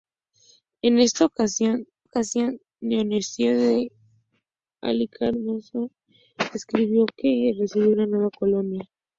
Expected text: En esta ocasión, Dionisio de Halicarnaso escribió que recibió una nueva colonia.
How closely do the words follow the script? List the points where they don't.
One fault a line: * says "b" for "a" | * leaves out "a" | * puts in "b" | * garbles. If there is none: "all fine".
* puts in "ocasión"